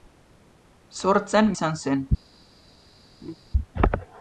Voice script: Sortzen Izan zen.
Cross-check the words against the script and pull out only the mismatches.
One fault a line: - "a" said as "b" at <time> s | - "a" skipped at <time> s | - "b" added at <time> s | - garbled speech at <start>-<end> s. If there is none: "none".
none